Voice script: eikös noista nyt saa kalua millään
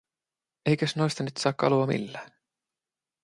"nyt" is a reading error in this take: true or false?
false